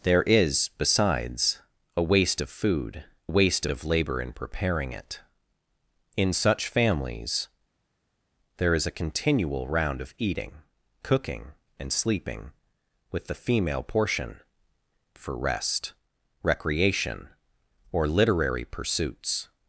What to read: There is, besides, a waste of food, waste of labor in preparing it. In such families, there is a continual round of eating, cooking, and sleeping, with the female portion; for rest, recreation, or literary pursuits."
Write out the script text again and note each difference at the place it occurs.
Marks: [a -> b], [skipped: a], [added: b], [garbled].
There is, besides, a waste of food, waste of labor in preparing it. In such families, there is a continual round of eating, cooking, and sleeping, with the female portion; for rest, recreation, or literary pursuits."